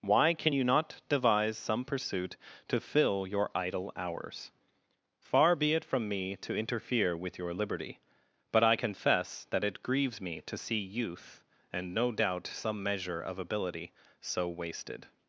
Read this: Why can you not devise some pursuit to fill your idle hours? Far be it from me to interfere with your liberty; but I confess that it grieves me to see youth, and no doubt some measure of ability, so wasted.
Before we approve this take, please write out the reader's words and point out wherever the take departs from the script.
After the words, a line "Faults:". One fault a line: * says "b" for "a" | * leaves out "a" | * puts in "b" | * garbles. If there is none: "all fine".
Why can you not devise some pursuit to fill your idle hours? Far be it from me to interfere with your liberty; but I confess that it grieves me to see youth, and no doubt some measure of ability, so wasted.
Faults:
all fine